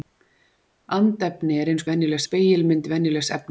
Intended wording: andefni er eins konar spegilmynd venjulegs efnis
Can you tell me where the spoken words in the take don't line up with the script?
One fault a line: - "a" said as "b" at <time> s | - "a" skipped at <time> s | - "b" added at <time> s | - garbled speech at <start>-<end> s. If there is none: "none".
- "konar" said as "venjulegs" at 1.9 s